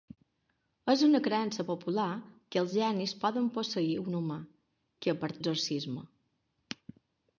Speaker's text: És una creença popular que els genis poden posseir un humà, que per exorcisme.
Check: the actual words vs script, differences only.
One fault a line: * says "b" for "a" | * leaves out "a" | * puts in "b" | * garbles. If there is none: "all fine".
all fine